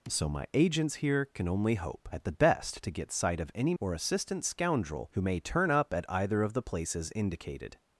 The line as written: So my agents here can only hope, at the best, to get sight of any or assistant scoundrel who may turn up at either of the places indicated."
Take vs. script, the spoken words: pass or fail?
pass